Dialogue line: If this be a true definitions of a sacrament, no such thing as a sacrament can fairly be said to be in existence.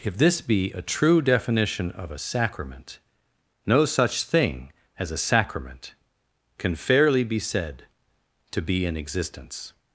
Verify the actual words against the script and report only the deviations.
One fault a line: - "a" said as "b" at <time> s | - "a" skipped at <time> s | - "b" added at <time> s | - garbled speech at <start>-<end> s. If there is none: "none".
- "definitions" said as "definition" at 1.2 s